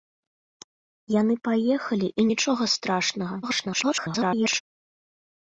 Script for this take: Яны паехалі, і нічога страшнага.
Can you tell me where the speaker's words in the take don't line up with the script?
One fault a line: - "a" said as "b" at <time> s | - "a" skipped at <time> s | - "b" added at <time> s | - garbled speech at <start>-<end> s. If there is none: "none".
- garbled speech at 3.4-4.6 s